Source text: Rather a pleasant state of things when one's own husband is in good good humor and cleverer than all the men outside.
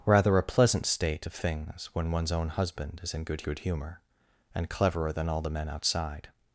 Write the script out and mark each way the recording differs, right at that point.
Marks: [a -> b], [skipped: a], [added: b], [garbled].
Rather a pleasant state of things when one's own husband is in good good humor and cleverer than all the men outside.